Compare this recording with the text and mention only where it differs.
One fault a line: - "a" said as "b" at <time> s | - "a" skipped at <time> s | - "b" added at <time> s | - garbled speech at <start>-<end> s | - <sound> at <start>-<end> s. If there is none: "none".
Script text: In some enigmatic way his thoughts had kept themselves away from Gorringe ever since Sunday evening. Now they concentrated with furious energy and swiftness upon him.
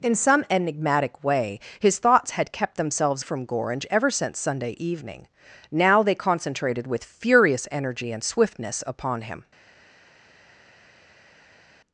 - "away" skipped at 3.2 s